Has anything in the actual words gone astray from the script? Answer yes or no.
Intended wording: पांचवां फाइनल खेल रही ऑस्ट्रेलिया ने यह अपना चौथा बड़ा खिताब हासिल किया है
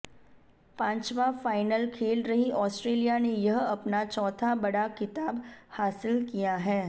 no